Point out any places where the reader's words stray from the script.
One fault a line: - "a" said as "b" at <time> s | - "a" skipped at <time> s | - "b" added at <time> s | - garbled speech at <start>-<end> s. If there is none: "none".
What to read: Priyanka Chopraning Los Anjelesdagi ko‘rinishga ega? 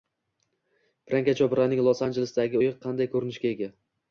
- "uyi qanday" added at 2.6 s